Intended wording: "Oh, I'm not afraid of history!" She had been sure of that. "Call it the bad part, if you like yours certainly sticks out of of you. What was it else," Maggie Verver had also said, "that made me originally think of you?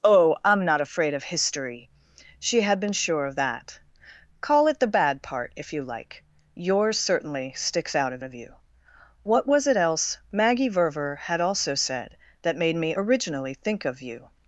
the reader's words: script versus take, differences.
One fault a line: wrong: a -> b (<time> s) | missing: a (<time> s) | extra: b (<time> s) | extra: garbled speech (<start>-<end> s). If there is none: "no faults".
no faults